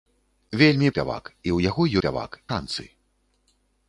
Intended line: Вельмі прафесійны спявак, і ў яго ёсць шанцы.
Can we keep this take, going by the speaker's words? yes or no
no